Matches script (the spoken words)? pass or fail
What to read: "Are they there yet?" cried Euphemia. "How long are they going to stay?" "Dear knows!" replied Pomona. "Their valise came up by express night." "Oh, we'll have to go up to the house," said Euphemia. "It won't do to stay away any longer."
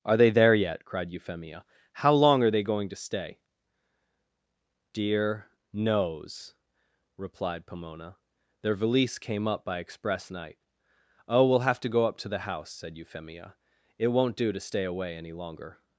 pass